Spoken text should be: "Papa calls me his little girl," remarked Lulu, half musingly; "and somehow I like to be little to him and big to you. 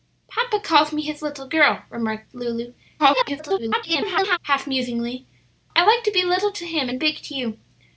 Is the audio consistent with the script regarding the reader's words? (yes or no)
no